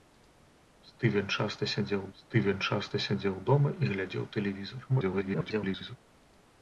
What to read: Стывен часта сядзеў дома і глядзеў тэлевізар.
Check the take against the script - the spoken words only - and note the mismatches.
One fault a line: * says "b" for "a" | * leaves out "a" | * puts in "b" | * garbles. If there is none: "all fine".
* puts in "стывен часта сядзеў"
* garbles